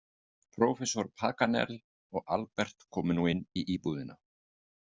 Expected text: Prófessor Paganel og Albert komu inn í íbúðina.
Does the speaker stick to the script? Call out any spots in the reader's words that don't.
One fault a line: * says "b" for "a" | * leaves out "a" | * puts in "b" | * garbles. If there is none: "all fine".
* puts in "nú"